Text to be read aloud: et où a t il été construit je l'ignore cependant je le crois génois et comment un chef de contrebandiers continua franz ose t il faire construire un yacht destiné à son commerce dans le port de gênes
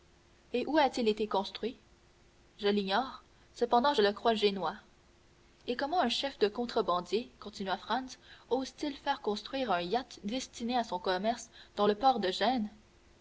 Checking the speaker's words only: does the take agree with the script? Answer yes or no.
yes